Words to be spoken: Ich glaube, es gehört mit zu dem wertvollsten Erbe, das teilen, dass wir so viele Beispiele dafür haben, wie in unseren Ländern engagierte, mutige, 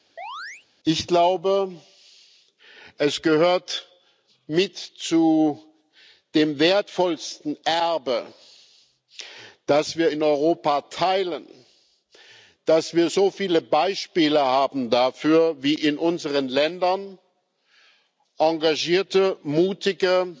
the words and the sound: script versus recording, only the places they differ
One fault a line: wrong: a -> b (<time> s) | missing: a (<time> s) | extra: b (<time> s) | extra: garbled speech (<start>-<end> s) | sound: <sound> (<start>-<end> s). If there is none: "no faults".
sound: chirp (0.2-0.7 s)
extra: wir in Europa (10.0 s)